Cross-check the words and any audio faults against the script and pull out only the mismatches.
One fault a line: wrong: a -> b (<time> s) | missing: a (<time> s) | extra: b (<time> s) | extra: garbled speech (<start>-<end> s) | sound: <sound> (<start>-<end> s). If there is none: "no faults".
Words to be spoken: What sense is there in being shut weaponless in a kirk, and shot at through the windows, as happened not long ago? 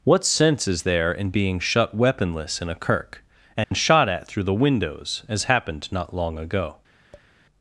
sound: dropout (3.6-3.7 s)
sound: tap (7.1-7.3 s)